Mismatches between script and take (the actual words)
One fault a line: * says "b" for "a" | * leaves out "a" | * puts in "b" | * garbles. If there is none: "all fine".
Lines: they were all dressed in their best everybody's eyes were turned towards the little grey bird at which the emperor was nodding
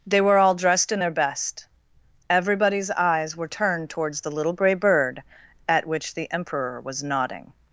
all fine